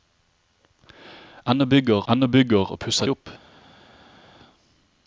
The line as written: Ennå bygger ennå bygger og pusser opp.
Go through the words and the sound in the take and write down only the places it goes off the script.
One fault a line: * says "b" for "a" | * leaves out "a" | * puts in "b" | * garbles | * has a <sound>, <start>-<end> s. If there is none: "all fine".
all fine